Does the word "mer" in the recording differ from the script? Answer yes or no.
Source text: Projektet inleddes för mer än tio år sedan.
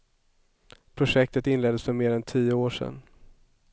no